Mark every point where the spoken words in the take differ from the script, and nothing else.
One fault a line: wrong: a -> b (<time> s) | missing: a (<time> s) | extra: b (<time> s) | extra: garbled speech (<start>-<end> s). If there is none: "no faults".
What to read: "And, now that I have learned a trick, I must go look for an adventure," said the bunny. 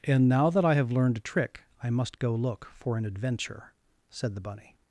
no faults